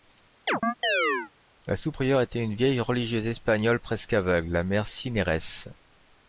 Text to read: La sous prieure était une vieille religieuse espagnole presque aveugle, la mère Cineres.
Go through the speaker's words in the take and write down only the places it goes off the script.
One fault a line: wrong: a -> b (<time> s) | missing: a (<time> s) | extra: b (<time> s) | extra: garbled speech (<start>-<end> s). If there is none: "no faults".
no faults